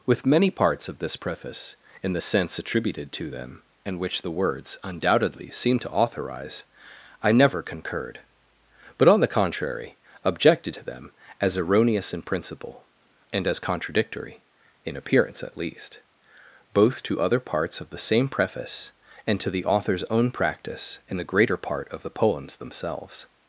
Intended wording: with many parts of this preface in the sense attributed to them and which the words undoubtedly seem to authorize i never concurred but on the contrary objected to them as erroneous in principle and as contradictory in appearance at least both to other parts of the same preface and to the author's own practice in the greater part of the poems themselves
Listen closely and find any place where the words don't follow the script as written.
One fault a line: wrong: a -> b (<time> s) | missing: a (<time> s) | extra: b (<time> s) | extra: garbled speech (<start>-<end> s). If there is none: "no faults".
no faults